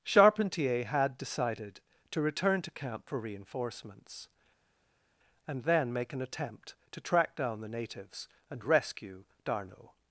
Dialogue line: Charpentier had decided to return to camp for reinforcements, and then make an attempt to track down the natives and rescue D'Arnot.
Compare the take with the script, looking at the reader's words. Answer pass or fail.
pass